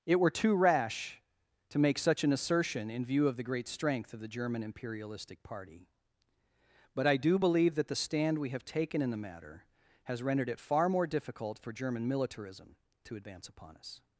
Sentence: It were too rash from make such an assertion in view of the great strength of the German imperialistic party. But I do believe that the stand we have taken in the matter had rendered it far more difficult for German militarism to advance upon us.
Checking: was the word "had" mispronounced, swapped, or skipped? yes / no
yes